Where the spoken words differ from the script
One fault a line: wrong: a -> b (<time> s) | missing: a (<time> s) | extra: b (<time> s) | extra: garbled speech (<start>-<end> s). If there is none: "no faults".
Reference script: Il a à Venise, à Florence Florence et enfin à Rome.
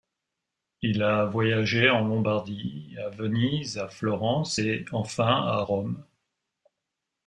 extra: voyagé en Lombardie (1.2 s)
missing: Florence (4.6 s)